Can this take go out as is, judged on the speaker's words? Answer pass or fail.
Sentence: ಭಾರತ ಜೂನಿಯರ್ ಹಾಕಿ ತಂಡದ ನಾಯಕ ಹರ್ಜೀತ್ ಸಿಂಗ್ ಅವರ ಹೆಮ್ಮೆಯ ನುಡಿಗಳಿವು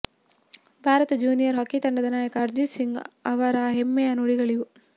pass